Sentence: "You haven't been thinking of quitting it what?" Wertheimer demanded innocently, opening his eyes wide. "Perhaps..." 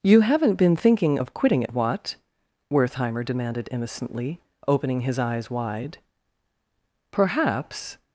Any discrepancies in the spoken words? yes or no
no